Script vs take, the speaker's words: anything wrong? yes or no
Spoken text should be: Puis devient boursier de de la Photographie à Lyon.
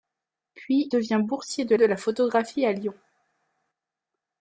no